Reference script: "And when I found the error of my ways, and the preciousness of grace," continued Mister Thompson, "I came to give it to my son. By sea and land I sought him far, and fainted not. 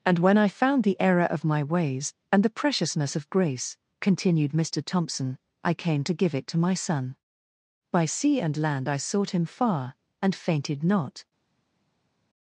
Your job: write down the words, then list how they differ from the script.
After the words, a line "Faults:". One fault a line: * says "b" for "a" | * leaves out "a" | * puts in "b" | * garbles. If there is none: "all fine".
"And when I found the error of my ways, and the preciousness of grace," continued Mister Thompson, "I came to give it to my son. By sea and land I sought him far, and fainted not.
Faults:
all fine